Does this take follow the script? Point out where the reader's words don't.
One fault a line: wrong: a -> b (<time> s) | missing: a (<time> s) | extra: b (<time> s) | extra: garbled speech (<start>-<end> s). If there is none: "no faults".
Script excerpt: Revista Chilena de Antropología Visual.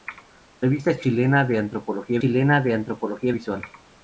extra: Chilena de Antropología (2.1 s)